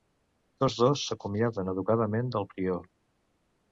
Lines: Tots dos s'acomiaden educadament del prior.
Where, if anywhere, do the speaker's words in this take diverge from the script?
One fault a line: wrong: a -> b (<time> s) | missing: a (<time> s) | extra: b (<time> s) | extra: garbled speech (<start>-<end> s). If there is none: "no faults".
no faults